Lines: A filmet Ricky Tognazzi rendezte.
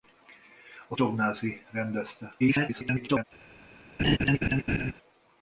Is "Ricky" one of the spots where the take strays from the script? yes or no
yes